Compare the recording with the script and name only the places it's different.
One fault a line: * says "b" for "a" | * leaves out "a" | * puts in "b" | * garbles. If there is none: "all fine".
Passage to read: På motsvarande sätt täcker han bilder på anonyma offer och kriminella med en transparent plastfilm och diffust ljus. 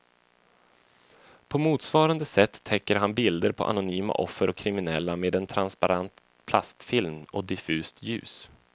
all fine